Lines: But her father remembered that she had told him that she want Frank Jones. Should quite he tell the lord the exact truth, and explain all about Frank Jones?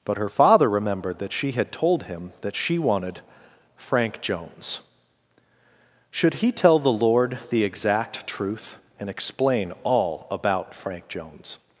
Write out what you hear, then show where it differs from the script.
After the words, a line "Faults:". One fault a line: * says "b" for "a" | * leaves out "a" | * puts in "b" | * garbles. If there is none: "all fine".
But her father remembered that she had told him that she wanted Frank Jones. Should he tell the lord the exact truth, and explain all about Frank Jones?
Faults:
* says "wanted" for "want"
* leaves out "quite"